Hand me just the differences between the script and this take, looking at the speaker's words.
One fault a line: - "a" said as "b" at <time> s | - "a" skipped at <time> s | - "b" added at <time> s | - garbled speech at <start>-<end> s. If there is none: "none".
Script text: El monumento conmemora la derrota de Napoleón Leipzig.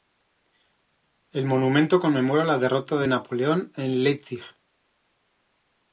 - "en" added at 3.8 s